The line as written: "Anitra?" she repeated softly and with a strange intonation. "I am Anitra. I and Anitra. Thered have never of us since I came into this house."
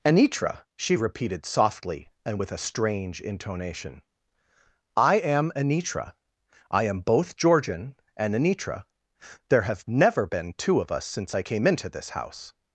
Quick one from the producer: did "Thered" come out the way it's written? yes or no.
no